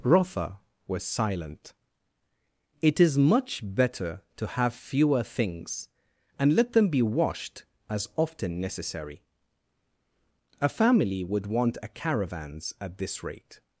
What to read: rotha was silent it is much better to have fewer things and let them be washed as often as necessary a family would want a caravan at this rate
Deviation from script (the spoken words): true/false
true